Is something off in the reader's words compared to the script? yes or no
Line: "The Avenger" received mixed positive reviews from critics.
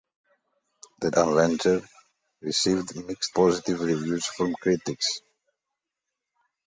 no